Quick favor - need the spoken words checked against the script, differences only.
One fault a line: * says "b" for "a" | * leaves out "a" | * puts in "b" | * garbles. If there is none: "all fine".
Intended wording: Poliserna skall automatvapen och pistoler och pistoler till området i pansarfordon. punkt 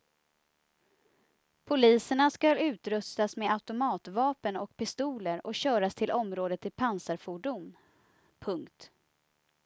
* puts in "utrustas med"
* says "köras" for "pistoler"